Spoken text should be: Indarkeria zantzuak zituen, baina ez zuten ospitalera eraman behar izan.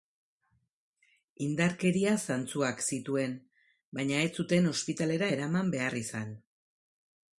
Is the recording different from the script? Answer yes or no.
no